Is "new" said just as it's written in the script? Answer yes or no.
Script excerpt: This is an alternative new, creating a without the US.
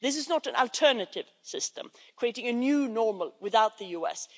no